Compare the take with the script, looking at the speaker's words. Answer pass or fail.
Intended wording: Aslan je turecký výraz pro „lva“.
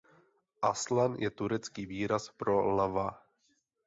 pass